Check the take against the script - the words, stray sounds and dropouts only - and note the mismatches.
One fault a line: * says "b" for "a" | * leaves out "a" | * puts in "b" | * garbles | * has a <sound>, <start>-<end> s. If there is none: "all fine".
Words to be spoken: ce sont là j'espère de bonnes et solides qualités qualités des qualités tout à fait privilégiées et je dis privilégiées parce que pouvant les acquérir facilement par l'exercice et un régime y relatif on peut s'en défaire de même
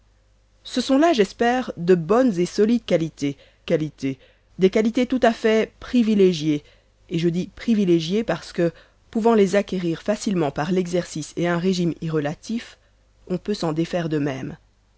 all fine